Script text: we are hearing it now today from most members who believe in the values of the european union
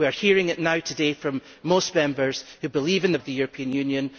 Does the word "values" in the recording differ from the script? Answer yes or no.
yes